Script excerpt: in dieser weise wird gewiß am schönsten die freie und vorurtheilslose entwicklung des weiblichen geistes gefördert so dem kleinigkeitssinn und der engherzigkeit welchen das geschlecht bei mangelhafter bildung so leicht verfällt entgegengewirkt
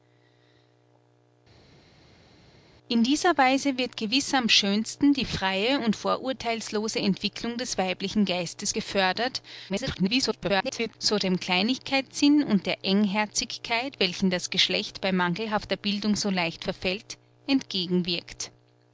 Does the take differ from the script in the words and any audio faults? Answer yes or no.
yes